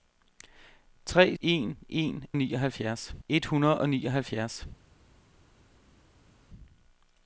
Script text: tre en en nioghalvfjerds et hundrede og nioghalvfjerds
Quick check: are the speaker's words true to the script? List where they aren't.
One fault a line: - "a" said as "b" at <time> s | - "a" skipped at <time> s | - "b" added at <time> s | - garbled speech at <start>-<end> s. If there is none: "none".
none